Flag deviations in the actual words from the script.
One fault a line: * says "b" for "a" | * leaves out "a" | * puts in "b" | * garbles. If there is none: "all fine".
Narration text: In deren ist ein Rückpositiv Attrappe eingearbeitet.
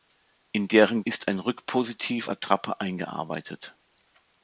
all fine